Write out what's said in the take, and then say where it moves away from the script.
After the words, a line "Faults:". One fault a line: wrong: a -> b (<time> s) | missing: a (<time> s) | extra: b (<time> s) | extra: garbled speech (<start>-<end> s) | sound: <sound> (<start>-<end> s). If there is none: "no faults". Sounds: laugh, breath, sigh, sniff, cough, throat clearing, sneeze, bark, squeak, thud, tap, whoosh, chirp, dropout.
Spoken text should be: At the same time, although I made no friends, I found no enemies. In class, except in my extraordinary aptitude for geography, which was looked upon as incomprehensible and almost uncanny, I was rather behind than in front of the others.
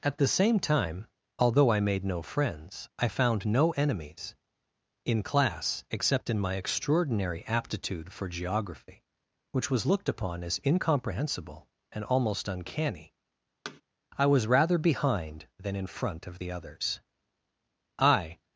At the same time, although I made no friends, I found no enemies. In class, except in my extraordinary aptitude for geography, which was looked upon as incomprehensible and almost uncanny, I was rather behind than in front of the others. I
Faults:
sound: thud (13.6-13.8 s)
extra: I (18.0 s)